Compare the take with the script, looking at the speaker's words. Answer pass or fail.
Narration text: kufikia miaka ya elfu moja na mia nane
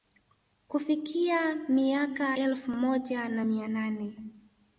fail